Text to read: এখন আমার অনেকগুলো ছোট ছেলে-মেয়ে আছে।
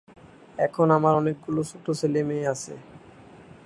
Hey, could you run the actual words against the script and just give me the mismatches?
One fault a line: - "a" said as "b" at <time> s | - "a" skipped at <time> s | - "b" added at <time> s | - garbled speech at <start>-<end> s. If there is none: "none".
none